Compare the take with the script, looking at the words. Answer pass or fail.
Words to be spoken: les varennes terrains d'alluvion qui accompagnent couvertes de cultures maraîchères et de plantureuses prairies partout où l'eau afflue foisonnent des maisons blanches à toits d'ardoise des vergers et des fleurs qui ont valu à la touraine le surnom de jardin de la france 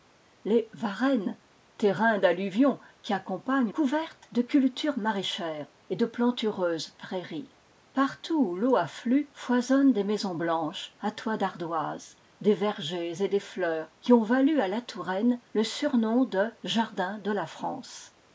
pass